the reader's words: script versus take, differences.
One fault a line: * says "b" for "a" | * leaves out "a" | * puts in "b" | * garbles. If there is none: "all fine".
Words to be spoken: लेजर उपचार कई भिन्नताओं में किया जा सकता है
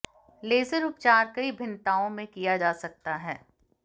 all fine